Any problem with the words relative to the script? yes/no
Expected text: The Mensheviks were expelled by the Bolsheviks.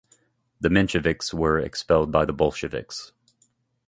no